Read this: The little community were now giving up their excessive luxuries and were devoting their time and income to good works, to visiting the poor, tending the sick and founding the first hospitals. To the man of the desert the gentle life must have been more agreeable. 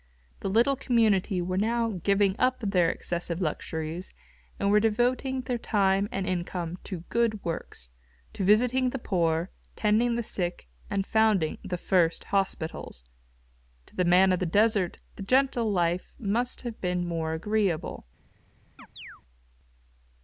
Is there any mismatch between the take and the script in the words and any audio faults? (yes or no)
yes